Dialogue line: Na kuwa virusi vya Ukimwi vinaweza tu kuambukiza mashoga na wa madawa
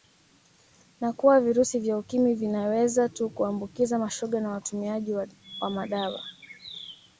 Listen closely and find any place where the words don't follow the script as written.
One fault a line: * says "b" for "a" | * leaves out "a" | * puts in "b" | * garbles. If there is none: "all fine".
* puts in "watumiaji"